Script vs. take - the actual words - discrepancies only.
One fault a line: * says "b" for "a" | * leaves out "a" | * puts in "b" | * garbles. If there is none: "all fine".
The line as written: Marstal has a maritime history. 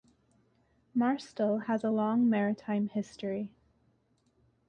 * puts in "long"